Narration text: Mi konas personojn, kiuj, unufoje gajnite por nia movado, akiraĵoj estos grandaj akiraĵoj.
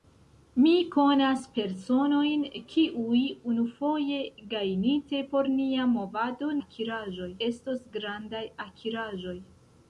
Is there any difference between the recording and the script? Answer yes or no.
no